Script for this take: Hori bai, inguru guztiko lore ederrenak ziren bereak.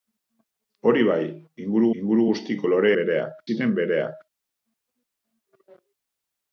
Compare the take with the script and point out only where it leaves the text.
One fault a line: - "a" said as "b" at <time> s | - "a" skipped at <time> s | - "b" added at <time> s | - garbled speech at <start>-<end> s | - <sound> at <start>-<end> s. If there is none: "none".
- "inguru" added at 2.0 s
- "ederrenak" said as "bereak" at 3.0 s